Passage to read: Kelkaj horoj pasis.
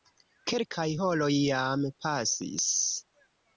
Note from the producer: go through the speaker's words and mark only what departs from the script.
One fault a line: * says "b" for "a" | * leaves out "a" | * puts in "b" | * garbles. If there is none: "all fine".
* puts in "jam"